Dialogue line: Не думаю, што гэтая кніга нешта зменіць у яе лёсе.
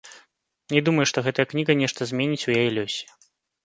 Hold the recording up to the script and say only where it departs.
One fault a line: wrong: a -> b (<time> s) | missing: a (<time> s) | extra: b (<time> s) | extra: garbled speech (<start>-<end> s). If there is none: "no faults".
no faults